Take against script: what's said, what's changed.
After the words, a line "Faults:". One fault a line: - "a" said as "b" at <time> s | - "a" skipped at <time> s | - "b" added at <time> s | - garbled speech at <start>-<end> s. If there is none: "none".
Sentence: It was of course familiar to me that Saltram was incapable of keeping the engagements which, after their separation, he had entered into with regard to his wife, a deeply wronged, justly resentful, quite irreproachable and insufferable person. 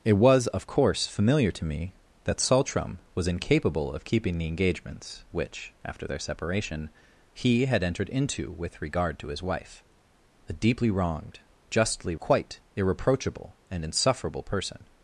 It was of course familiar to me that Saltram was incapable of keeping the engagements which, after their separation, he had entered into with regard to his wife, a deeply wronged, justly quite irreproachable and insufferable person.
Faults:
- "resentful" skipped at 12.2 s